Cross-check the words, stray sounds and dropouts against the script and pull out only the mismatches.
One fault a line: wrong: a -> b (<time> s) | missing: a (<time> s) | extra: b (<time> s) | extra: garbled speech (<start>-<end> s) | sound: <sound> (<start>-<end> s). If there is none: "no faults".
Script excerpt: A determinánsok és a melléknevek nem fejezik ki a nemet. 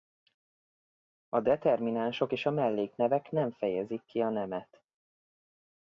no faults